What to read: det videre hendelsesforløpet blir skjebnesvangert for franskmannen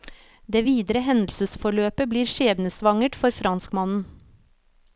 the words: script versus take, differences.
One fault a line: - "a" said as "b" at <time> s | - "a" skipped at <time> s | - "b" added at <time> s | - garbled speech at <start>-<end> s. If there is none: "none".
none